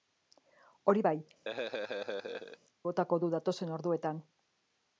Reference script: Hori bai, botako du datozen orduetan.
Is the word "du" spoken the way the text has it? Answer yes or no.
yes